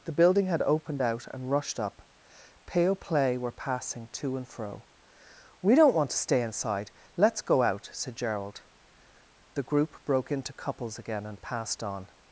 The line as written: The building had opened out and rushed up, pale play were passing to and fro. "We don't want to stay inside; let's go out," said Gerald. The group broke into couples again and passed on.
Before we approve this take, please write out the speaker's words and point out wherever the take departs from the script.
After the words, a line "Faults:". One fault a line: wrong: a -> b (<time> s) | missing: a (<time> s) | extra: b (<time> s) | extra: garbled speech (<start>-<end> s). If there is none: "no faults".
The building had opened out and rushed up, pale play were passing to and fro. "We don't want to stay inside; let's go out," said Gerald. The group broke into couples again and passed on.
Faults:
no faults